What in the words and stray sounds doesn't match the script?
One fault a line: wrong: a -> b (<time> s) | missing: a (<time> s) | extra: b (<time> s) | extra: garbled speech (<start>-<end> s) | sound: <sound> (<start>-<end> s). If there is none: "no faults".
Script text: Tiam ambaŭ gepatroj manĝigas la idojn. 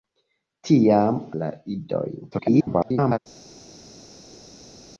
missing: ambaŭ gepatroj manĝigas (1.2 s)
extra: garbled speech (2.3-3.2 s)